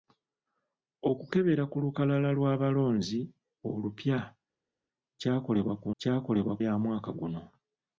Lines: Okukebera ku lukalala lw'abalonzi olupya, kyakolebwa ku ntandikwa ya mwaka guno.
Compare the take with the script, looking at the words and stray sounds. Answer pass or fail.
fail